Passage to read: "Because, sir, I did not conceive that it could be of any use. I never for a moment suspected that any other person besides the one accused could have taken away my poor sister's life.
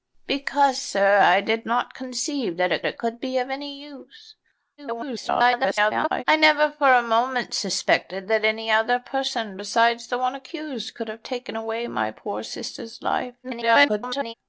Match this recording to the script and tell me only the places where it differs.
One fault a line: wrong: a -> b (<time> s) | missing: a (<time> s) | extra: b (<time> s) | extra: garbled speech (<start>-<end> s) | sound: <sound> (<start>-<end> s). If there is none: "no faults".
extra: it (2.8 s)
extra: garbled speech (4.8-6.2 s)
extra: garbled speech (13.4-14.3 s)